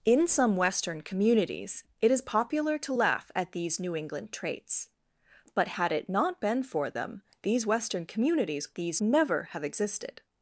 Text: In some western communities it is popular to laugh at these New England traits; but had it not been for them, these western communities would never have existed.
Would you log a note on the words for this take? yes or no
yes